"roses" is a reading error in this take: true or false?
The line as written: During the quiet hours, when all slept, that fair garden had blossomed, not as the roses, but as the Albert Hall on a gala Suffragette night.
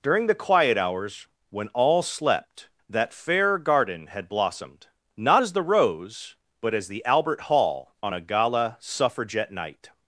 true